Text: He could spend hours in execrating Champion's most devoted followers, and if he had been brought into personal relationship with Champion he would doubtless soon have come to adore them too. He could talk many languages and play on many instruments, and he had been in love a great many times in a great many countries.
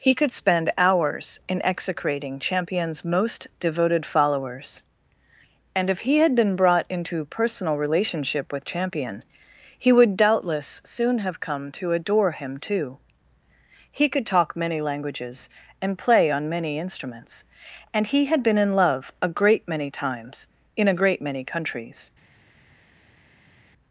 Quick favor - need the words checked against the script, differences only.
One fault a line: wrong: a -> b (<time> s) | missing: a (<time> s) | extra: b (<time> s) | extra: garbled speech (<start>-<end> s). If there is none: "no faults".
wrong: them -> him (12.3 s)